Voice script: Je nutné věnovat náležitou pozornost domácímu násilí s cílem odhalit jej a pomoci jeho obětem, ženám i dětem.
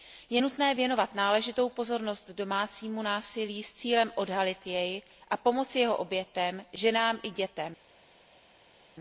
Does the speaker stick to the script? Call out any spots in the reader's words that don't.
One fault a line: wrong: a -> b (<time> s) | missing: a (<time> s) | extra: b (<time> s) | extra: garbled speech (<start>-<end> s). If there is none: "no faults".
no faults